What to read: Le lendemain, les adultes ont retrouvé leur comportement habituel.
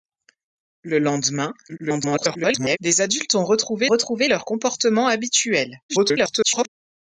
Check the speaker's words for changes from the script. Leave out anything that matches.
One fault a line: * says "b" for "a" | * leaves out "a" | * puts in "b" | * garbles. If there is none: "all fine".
* garbles
* puts in "retrouvé"
* garbles